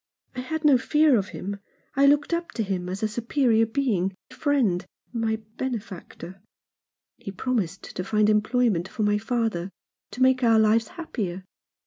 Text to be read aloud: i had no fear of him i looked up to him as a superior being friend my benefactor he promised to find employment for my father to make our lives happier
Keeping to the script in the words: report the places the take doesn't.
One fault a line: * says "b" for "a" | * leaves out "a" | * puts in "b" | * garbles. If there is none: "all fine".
all fine